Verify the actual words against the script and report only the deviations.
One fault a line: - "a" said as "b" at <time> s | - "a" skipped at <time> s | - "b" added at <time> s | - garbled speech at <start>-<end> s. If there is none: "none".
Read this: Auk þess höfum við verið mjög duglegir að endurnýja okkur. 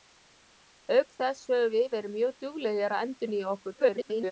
- garbled speech at 3.7-4.3 s